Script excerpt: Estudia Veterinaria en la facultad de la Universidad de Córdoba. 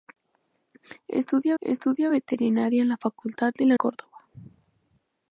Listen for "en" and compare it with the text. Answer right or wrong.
right